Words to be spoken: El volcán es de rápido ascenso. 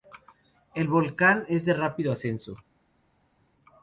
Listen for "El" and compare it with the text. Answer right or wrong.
right